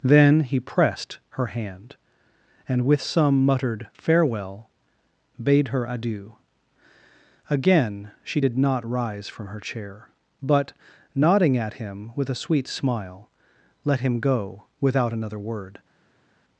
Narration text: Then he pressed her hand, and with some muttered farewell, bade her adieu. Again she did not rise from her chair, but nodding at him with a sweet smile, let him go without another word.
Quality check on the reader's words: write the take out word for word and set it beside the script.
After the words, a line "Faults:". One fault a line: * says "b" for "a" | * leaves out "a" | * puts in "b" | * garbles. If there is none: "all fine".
Then he pressed her hand, and with some muttered farewell, bade her adieu. Again she did not rise from her chair, but nodding at him with a sweet smile, let him go without another word.
Faults:
all fine